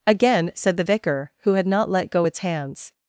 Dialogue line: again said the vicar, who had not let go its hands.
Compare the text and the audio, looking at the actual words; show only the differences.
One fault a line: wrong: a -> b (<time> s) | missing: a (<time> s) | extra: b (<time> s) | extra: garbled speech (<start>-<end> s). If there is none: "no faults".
no faults